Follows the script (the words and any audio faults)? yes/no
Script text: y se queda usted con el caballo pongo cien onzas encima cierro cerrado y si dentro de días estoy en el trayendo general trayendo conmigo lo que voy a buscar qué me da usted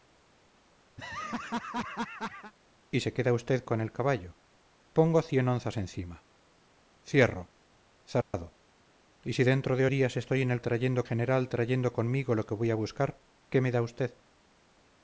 no